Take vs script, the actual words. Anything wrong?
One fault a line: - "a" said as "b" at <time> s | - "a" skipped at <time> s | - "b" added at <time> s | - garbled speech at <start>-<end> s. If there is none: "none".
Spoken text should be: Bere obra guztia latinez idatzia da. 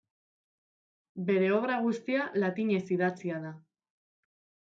none